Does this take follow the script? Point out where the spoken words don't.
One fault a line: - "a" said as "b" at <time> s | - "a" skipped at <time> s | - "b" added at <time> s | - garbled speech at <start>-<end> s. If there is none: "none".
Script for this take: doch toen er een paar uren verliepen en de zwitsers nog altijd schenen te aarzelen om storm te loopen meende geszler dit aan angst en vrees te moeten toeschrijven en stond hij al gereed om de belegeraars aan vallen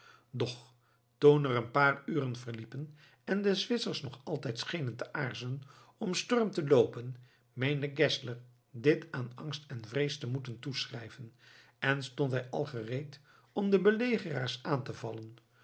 - "te" added at 14.8 s